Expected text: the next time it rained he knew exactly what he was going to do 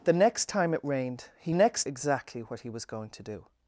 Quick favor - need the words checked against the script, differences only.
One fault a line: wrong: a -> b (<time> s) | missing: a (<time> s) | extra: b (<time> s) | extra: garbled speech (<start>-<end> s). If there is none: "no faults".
wrong: knew -> next (1.5 s)